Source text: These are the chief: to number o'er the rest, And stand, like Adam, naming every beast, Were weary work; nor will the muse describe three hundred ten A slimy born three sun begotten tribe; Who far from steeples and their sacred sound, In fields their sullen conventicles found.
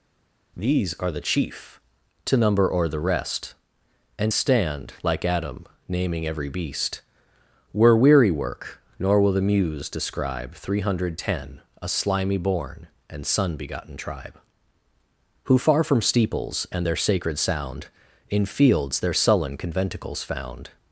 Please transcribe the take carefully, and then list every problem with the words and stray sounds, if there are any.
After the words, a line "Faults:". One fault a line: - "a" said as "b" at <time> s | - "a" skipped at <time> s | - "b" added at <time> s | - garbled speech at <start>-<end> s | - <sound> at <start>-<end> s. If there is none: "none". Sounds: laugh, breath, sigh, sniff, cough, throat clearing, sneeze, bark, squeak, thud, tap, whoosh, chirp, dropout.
These are the chief: to number o'er the rest, And stand, like Adam, naming every beast, Were weary work; nor will the muse describe three hundred ten A slimy born and sun begotten tribe; Who far from steeples and their sacred sound, In fields their sullen conventicles found.
Faults:
- "three" said as "and" at 13.1 s